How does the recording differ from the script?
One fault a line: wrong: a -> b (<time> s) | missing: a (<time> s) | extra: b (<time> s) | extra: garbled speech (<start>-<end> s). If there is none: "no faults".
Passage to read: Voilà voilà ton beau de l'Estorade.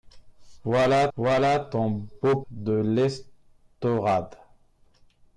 no faults